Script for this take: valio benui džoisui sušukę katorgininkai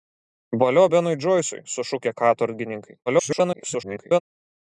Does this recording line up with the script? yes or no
no